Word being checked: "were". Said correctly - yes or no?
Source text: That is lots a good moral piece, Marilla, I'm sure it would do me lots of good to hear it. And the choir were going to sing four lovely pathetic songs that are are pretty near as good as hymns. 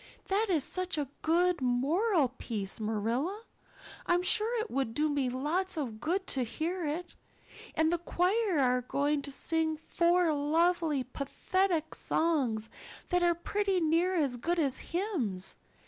no